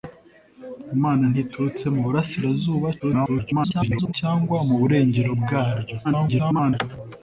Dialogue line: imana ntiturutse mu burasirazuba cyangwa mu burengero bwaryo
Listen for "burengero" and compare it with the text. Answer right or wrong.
right